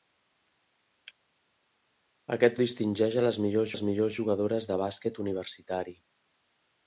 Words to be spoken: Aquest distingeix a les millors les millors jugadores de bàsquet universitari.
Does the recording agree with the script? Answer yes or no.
yes